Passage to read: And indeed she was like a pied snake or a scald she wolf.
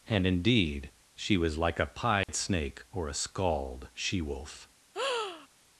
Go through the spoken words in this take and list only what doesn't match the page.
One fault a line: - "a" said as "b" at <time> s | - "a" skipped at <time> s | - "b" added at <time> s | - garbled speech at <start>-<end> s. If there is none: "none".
none